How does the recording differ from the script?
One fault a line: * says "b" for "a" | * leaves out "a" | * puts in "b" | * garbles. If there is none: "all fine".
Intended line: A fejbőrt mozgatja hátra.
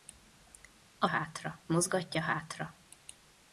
* says "hátra" for "fejbőrt"